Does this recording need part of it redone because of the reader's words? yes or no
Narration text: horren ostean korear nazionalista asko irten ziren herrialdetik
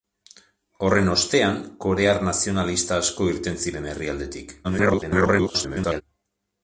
yes